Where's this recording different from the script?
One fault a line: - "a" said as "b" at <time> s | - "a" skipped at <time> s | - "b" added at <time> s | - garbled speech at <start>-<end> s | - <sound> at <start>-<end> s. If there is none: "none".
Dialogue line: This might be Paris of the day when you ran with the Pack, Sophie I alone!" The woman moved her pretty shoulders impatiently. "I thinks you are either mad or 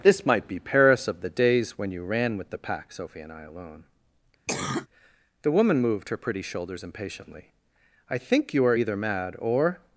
- "day" said as "days" at 1.3 s
- "and" added at 3.2 s
- cough at 4.5-4.9 s
- "thinks" said as "think" at 8.2 s